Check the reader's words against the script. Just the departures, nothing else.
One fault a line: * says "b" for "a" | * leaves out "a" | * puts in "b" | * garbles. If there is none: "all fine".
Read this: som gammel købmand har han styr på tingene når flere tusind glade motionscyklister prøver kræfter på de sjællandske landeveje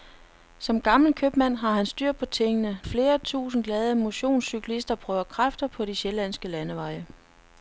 * leaves out "når"